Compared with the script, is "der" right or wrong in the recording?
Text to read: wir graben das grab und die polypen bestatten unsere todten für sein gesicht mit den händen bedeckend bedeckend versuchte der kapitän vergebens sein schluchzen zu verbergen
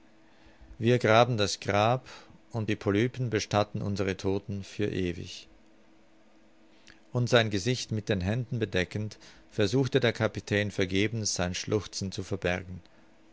right